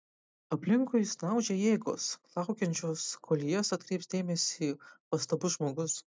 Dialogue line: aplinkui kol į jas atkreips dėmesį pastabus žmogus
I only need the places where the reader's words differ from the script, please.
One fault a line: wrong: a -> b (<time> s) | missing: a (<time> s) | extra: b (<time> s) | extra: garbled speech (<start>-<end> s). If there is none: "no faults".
extra: snaudžia jėgos laukiančios (1.1 s)